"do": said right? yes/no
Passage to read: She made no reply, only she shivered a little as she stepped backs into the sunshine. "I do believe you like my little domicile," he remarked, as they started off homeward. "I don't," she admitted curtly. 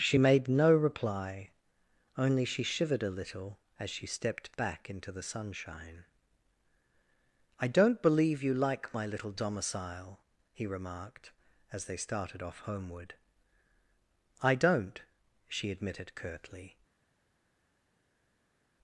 no